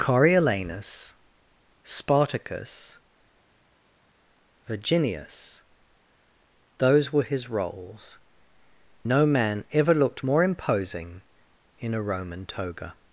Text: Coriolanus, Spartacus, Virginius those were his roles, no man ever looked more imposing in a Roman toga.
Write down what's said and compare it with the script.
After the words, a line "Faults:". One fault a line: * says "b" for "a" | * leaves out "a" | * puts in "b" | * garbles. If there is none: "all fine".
Coriolanus, Spartacus, Virginius those were his roles, no man ever looked more imposing in a Roman toga.
Faults:
all fine